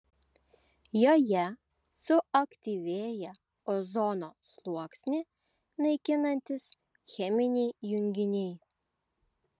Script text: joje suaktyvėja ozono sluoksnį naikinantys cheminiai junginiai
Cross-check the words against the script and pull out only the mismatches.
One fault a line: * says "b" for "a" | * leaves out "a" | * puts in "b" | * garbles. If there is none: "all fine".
all fine